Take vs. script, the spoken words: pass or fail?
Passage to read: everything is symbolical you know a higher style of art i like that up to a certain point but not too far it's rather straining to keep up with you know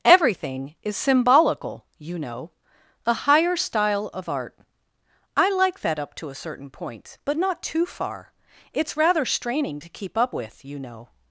pass